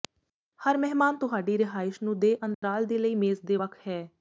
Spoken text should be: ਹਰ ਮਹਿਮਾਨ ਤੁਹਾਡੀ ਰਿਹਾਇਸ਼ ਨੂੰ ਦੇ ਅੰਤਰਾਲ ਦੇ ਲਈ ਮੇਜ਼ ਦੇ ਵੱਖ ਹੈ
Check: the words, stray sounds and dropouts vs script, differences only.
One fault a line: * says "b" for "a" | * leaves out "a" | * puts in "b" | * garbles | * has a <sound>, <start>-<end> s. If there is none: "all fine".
* has a dropout, 2.5-2.6 s